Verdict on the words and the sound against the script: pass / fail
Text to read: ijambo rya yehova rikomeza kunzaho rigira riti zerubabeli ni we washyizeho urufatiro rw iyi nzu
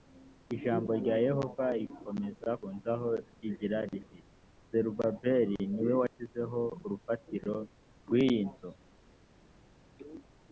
pass